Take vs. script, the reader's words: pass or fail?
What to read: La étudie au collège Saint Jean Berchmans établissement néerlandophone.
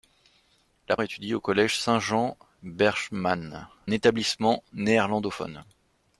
pass